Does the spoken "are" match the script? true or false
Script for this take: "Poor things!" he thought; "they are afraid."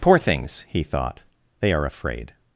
true